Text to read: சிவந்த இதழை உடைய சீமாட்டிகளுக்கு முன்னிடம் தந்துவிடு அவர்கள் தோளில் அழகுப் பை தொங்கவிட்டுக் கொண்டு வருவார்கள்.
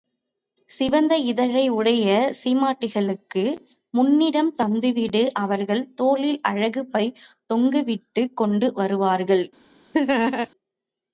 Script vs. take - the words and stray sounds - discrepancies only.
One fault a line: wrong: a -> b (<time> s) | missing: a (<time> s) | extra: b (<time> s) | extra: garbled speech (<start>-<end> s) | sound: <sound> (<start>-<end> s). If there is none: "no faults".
sound: laugh (9.9-10.5 s)